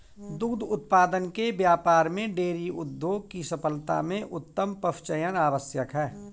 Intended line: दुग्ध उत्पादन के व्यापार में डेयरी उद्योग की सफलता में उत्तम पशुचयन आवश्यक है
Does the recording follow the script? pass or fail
pass